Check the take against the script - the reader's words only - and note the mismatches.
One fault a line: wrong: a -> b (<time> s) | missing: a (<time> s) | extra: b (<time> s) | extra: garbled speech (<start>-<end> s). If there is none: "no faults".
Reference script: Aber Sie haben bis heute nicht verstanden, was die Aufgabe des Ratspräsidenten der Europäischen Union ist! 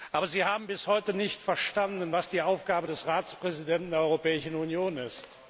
no faults